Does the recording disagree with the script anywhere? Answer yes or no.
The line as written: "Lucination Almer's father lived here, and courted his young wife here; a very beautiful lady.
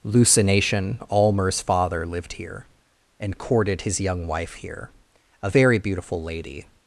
no